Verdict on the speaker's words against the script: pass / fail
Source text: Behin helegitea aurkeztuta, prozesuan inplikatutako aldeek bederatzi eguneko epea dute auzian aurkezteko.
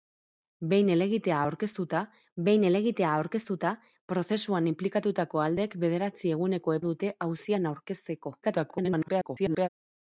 fail